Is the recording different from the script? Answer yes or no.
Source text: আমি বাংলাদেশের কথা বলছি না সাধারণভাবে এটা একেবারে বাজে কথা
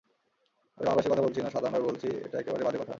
yes